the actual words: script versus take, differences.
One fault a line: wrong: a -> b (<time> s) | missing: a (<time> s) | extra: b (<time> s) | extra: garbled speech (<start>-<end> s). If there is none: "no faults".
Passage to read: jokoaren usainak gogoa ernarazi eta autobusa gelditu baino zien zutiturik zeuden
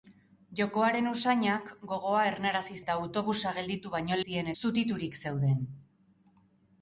no faults